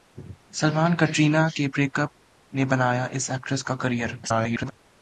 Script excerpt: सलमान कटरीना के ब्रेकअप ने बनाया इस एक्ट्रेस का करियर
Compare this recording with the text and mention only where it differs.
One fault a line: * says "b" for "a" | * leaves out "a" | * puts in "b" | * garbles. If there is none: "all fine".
* garbles